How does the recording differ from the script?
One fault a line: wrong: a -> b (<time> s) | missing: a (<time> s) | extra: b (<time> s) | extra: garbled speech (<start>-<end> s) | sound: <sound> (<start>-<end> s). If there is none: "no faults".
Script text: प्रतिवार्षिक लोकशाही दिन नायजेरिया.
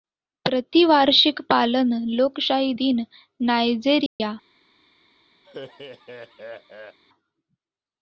extra: पालन (1.5 s)
sound: dropout (4.1-4.2 s)
sound: laugh (5.4-7.0 s)